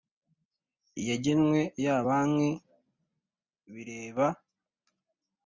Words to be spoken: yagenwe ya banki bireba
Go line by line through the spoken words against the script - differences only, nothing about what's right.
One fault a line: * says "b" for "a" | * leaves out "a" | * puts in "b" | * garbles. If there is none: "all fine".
all fine